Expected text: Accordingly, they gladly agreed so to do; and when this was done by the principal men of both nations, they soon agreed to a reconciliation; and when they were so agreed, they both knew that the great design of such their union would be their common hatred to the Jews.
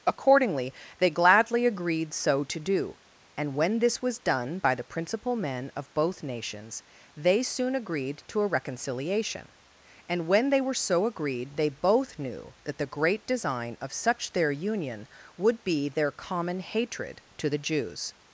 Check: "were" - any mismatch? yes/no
no